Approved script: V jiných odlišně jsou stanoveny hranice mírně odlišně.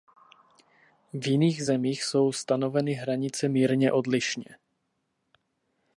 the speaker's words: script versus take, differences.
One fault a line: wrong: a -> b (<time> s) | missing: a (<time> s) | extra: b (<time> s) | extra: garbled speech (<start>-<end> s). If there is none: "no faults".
wrong: odlišně -> zemích (1.6 s)